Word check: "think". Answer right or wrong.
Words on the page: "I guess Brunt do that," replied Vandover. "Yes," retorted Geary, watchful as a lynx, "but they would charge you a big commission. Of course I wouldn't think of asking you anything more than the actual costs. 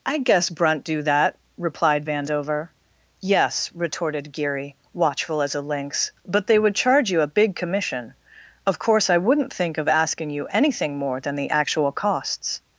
right